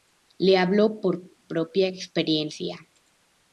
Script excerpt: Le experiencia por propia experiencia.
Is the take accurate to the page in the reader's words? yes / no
no